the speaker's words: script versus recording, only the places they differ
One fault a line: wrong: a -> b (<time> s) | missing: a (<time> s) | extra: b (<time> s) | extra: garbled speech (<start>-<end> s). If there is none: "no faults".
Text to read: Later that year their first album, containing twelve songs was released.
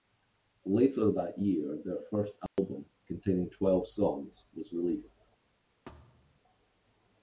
no faults